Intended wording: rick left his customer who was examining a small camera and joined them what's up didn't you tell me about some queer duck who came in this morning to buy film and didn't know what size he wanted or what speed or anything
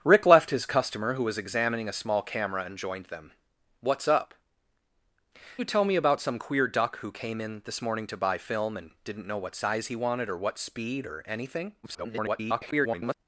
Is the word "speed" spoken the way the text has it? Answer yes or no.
yes